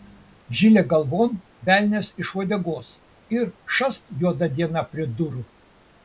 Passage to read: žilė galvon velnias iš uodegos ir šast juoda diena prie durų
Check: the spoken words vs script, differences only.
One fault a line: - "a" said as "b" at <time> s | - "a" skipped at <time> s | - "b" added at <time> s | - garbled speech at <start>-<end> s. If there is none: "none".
none